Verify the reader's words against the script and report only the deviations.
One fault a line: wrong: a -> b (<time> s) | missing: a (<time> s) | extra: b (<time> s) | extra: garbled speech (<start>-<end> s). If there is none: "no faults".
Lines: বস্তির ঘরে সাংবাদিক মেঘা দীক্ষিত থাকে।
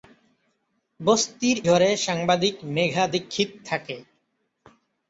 no faults